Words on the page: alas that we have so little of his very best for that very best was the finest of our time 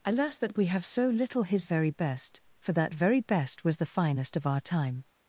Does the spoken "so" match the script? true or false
true